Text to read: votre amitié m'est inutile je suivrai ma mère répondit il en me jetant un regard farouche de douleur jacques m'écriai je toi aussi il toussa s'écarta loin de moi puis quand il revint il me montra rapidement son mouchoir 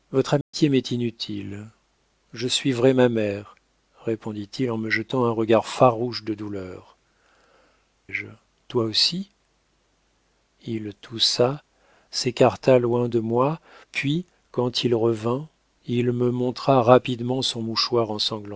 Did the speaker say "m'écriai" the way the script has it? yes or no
no